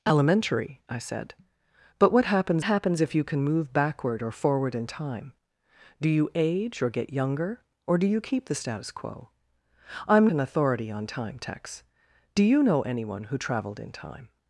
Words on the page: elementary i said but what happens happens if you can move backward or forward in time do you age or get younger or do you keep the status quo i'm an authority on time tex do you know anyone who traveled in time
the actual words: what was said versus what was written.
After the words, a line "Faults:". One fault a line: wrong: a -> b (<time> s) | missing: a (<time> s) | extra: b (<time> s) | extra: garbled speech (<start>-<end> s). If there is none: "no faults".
elementary i said but what happens happens if you can move backward or forward in time do you age or get younger or do you keep the status quo i'm an authority on time tex do you know anyone who traveled in time
Faults:
no faults